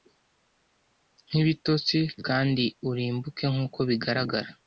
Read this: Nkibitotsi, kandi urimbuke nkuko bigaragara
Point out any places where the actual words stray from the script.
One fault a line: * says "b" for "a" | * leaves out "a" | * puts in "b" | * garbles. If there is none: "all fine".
all fine